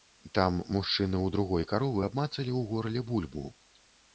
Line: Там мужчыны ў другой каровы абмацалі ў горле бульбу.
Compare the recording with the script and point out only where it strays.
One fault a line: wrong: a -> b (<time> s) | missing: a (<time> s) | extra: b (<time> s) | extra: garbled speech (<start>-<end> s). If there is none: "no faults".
no faults